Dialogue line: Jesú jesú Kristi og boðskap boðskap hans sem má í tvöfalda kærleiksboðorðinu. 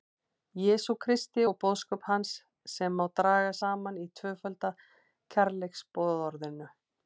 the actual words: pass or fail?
fail